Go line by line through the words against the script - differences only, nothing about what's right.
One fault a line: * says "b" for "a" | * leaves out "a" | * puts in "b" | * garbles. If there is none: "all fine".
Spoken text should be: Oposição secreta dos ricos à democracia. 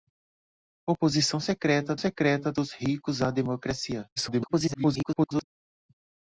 * puts in "secreta"
* garbles